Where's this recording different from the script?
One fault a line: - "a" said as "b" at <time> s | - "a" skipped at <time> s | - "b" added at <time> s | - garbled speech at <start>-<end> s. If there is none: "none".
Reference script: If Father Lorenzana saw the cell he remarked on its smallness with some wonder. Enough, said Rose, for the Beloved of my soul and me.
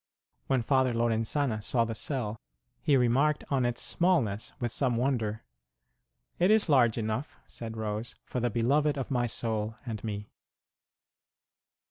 - "If" said as "When" at 0.5 s
- "It is large" added at 6.4 s